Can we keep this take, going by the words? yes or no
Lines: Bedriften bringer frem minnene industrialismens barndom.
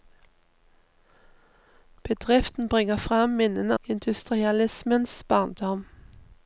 yes